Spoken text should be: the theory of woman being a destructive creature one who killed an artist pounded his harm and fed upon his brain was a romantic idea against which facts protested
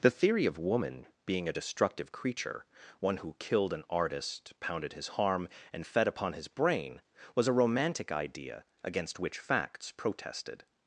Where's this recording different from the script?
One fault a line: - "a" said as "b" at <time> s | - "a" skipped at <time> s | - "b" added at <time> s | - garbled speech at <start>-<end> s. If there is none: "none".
none